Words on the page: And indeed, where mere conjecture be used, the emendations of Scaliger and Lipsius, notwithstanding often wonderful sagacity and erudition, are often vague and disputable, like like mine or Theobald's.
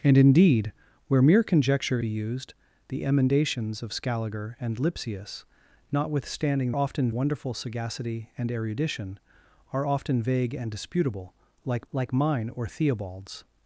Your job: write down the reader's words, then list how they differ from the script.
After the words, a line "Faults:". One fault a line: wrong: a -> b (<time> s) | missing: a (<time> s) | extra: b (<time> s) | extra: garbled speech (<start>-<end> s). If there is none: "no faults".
And indeed, where mere conjecture be used, the emendations of Scaliger and Lipsius, notwithstanding often wonderful sagacity and erudition, are often vague and disputable, like like mine or Theobald's.
Faults:
no faults